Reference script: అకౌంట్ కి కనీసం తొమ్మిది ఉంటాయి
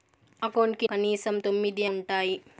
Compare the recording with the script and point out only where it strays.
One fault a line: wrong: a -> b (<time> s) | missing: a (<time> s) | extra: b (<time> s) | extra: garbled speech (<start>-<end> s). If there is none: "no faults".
no faults